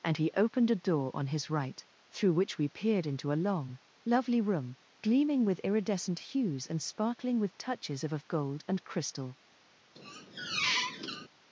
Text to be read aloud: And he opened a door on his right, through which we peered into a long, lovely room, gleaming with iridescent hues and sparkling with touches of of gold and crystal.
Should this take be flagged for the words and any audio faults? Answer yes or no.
yes